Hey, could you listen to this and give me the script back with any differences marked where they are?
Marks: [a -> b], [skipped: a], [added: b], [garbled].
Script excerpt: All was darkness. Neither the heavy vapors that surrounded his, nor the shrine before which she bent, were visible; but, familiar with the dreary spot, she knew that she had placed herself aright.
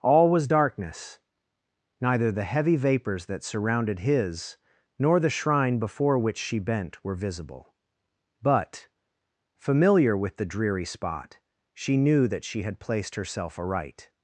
All was darkness. Neither the heavy vapors that surrounded his, nor the shrine before which she bent, were visible; but, familiar with the dreary spot, she knew that she had placed herself aright.